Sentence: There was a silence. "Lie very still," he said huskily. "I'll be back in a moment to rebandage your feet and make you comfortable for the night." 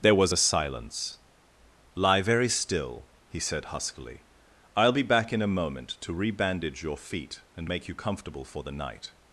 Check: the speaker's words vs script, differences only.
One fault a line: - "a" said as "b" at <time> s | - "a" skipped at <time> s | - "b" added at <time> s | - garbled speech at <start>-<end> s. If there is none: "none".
none